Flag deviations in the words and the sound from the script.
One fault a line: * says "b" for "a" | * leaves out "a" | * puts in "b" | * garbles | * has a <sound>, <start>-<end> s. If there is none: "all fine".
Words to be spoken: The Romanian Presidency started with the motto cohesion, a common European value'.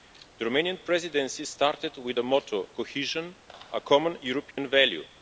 * has a dropout, 4.5-4.6 s